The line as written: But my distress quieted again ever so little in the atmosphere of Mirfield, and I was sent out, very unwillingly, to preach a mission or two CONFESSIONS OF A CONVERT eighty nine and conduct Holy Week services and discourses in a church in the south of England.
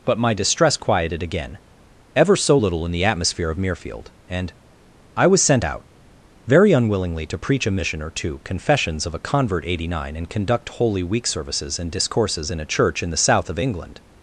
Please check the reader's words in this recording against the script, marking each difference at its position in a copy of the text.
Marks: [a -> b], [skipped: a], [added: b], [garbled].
But my distress quieted again ever so little in the atmosphere of Mirfield, and I was sent out, very unwillingly, to preach a mission or two CONFESSIONS OF A CONVERT eighty nine and conduct Holy Week services and discourses in a church in the south of England.